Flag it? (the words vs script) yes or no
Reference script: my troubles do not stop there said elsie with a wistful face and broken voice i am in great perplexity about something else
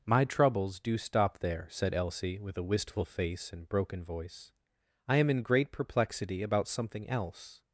yes